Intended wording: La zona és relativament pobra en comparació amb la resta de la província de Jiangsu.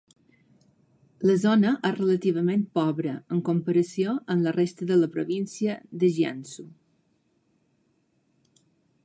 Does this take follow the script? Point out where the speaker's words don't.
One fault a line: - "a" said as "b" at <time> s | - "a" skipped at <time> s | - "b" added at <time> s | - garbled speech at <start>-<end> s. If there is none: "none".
none